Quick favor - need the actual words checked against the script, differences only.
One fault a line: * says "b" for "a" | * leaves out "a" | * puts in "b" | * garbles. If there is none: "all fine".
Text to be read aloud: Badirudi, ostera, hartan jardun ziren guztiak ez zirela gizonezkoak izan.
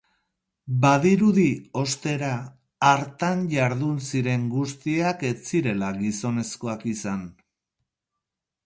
all fine